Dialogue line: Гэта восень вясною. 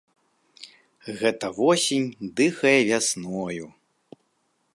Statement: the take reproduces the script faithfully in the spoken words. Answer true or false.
false